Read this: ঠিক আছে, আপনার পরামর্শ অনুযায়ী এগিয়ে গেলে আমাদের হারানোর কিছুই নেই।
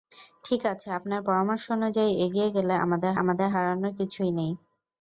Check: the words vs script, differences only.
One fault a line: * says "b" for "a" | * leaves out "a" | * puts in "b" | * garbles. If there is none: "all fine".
* puts in "আমাদের"